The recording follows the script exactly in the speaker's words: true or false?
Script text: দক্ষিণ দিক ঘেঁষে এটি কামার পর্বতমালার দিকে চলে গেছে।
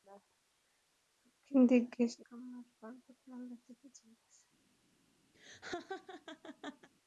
false